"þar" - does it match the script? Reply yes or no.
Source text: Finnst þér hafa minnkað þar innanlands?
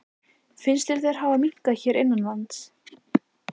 no